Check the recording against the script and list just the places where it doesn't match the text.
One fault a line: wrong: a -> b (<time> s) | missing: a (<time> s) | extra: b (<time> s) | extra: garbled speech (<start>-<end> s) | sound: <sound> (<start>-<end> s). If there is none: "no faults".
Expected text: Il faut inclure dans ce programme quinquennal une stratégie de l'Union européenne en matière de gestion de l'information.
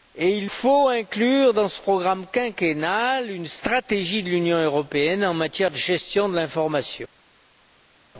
no faults